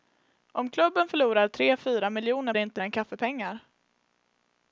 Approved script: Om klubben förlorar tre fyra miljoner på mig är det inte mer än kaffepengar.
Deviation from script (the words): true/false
true